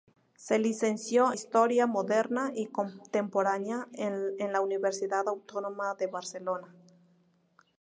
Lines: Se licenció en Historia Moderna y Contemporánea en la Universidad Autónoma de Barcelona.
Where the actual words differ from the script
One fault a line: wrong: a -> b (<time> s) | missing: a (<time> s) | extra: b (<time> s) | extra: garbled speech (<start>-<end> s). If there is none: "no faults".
missing: en (1.3 s)